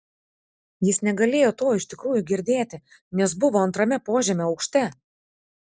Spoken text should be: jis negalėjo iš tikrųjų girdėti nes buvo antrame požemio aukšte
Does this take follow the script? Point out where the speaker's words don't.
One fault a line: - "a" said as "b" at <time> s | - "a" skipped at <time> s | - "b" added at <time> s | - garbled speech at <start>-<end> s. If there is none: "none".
- "to" added at 1.6 s